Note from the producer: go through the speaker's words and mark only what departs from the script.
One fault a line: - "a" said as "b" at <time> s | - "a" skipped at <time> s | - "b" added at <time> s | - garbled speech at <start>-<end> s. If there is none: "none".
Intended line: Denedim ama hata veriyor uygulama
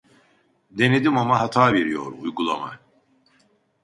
none